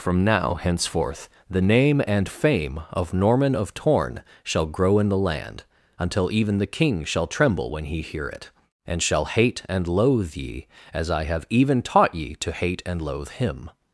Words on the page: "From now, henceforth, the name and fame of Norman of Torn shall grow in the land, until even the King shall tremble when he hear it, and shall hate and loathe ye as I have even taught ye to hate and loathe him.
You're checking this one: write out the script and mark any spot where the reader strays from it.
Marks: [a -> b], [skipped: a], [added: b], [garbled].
"From now, henceforth, the name and fame of Norman of Torn shall grow in the land, until even the King shall tremble when he hear it, and shall hate and loathe ye as I have even taught ye to hate and loathe him.